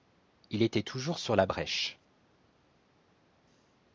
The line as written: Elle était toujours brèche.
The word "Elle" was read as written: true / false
false